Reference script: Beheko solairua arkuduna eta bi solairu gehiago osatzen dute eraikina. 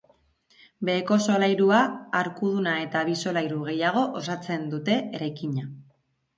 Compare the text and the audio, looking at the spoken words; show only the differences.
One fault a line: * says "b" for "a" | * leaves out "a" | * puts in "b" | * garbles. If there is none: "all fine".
all fine